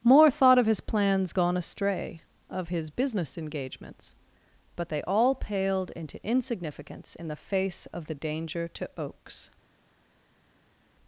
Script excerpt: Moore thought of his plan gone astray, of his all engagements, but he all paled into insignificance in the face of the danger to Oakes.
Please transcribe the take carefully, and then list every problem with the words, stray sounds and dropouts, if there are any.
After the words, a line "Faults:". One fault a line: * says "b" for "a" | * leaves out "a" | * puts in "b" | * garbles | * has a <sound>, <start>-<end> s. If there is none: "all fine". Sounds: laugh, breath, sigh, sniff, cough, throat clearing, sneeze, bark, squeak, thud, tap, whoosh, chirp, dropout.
Moore thought of his plans gone astray, of his business engagements, but they all paled into insignificance in the face of the danger to Oakes.
Faults:
* says "plans" for "plan"
* says "business" for "all"
* says "they" for "he"